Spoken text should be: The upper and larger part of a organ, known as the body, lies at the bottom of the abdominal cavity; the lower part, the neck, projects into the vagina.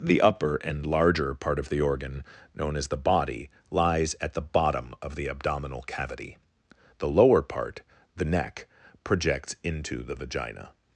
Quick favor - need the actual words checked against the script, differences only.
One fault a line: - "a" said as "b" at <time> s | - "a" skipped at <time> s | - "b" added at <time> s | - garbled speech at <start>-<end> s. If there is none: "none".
- "a" said as "the" at 1.7 s